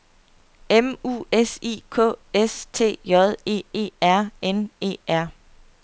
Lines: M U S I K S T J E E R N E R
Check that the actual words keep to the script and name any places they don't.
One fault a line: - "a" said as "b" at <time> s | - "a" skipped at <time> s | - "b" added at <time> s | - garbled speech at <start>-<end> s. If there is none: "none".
none